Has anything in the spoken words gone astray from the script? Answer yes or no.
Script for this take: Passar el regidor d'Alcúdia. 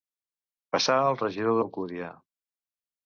no